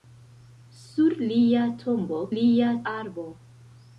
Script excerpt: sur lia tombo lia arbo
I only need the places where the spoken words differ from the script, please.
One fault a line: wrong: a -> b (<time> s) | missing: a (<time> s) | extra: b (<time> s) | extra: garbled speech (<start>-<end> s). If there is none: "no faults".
no faults